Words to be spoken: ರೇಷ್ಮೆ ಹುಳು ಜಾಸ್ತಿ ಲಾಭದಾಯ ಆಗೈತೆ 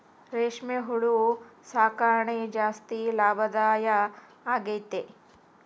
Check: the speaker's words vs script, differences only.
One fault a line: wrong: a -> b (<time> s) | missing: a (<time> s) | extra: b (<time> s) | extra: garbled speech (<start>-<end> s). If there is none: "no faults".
extra: ಸಾಕಣೆ (1.6 s)